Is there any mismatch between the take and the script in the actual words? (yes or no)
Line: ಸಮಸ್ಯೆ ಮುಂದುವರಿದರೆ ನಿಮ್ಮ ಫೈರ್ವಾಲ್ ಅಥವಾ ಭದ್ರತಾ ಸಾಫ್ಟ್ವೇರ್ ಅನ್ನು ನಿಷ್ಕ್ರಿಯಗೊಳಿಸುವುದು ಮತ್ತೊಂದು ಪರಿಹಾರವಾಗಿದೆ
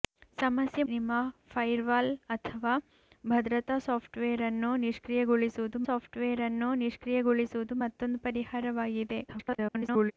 yes